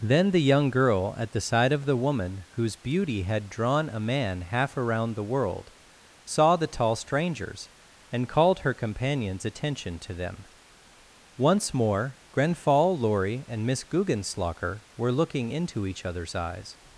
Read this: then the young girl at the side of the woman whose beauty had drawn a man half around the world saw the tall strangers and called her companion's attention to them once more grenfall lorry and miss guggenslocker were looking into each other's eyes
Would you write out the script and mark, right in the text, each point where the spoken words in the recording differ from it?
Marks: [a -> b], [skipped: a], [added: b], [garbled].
then the young girl at the side of the woman whose beauty had drawn a man half around the world saw the tall strangers and called her companion's attention to them once more grenfall lorry and miss guggenslocker were looking into each other's eyes